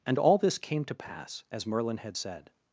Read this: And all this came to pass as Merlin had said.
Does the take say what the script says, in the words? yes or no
yes